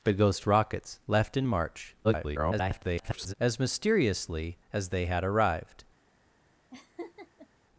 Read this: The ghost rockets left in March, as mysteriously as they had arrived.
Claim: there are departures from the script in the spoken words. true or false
true